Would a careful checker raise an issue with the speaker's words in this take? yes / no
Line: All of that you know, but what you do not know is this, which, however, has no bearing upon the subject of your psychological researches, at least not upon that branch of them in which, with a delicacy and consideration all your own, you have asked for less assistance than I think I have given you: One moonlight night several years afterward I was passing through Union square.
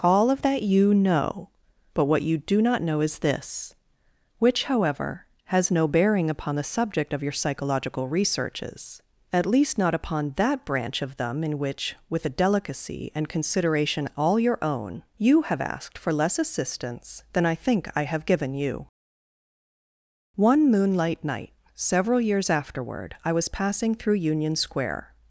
no